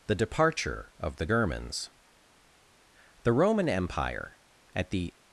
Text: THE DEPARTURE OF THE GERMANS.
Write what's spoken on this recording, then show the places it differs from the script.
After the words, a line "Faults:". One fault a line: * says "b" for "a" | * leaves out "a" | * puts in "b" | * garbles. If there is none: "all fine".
THE DEPARTURE OF THE GERMANS. The Roman Empire, at the
Faults:
* puts in "The Roman Empire at the"